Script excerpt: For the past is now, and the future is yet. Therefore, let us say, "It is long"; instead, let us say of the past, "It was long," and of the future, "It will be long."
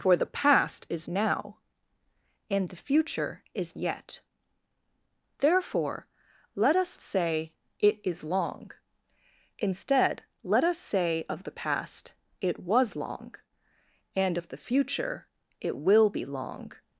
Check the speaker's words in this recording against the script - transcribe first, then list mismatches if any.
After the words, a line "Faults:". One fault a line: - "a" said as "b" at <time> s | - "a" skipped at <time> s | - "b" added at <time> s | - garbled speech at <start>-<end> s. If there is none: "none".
For the past is now, and the future is yet. Therefore, let us say, "It is long"; instead, let us say of the past, "It was long," and of the future, "It will be long."
Faults:
none